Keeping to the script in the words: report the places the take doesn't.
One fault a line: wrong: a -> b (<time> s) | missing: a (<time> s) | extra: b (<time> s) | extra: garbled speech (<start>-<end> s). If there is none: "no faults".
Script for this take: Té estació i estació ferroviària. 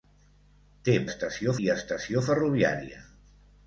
no faults